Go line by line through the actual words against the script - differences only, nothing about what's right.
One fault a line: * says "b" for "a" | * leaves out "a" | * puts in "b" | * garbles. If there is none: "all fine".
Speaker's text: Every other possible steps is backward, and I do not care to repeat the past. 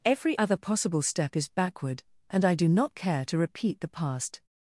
* says "step" for "steps"